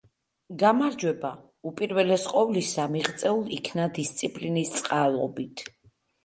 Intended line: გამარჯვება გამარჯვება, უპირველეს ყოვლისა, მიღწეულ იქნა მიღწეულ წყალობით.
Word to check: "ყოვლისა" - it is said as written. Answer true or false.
true